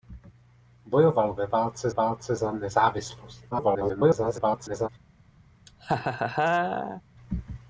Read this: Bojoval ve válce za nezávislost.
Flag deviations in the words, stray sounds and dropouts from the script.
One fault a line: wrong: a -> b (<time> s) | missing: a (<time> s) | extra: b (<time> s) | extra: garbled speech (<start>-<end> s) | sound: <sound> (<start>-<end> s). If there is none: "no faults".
extra: válce (1.9 s)
extra: garbled speech (3.5-4.9 s)
sound: laugh (5.7-7.0 s)